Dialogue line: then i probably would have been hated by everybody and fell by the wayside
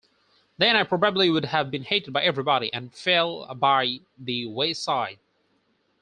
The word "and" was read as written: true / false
true